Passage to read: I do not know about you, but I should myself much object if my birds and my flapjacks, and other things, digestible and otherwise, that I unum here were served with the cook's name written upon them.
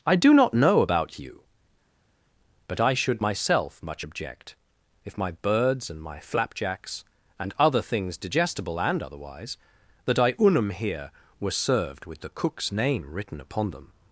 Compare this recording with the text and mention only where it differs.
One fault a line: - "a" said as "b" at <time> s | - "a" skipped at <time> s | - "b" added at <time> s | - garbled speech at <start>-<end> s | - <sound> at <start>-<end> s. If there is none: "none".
none